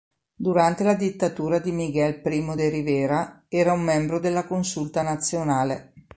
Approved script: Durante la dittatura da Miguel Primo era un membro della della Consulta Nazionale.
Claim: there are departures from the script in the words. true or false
true